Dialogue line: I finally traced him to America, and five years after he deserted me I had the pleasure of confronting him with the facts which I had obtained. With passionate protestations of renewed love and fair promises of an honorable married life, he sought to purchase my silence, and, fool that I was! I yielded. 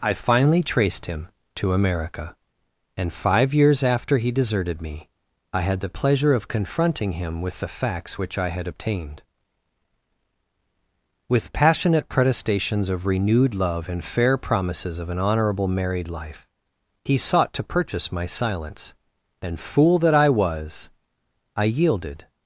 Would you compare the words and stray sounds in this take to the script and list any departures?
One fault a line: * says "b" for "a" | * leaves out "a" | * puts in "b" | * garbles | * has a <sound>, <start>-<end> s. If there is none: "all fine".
all fine